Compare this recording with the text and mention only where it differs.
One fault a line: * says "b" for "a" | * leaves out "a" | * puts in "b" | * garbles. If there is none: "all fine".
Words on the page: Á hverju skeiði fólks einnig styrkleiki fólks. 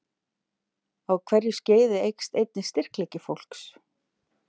* says "eykst" for "fólks"